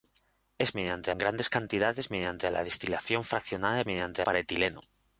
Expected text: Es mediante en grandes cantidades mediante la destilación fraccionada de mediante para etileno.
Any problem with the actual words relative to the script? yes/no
no